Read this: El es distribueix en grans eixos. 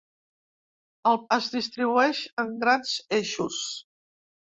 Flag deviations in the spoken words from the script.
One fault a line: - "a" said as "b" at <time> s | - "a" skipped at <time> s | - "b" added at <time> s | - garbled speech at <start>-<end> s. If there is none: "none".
none